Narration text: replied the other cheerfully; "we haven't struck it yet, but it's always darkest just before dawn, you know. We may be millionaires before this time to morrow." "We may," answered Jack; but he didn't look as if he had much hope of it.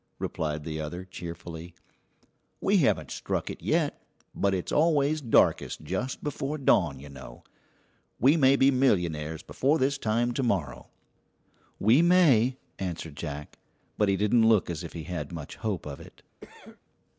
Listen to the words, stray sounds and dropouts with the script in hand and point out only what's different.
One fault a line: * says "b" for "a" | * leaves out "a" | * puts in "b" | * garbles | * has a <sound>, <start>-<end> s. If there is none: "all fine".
* has a cough, 16.4-16.8 s